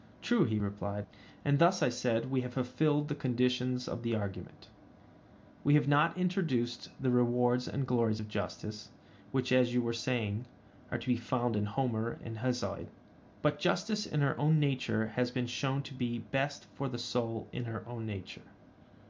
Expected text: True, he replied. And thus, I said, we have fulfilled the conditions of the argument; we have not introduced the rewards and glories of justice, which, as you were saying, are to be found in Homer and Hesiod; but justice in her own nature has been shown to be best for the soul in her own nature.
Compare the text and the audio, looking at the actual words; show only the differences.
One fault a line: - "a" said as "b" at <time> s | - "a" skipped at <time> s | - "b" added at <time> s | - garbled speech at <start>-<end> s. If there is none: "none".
none